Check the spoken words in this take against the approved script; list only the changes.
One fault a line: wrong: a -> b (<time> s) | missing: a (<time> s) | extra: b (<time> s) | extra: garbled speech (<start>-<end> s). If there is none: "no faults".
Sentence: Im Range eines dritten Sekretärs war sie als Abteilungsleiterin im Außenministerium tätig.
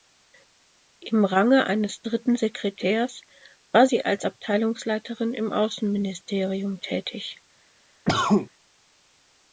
no faults